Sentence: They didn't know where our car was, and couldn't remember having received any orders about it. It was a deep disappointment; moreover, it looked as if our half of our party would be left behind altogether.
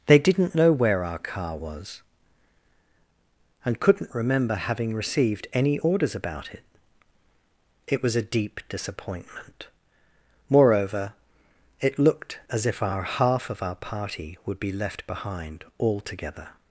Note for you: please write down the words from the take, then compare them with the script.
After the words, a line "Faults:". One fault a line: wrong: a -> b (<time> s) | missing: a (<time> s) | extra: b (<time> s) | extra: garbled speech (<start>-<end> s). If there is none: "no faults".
They didn't know where our car was, and couldn't remember having received any orders about it. It was a deep disappointment; moreover, it looked as if our half of our party would be left behind altogether.
Faults:
no faults